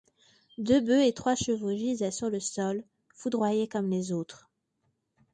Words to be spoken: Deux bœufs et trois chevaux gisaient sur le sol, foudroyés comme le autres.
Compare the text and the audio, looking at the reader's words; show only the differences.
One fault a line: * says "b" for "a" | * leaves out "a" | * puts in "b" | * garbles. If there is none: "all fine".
* says "les" for "le"